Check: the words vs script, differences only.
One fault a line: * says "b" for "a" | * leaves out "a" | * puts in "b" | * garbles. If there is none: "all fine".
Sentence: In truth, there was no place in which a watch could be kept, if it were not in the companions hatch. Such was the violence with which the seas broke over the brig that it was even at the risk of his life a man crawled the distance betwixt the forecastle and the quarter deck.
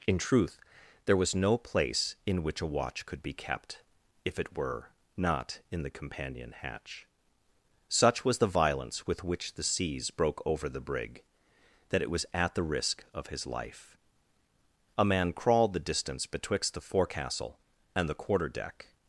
* says "companion" for "companions"
* leaves out "even"